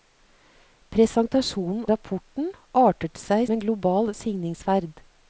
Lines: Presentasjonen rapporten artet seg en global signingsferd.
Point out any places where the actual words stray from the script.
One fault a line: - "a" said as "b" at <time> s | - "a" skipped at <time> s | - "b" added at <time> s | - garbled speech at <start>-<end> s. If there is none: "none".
none